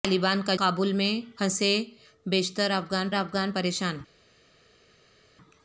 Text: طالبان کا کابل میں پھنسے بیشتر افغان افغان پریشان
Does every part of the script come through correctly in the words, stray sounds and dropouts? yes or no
yes